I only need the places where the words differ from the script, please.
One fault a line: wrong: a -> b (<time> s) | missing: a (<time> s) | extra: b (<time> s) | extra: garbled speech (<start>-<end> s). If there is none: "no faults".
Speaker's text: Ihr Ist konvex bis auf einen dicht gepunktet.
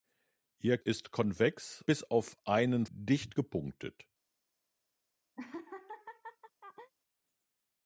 no faults